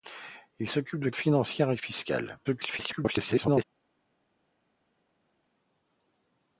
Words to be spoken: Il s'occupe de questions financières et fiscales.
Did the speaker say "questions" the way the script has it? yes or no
no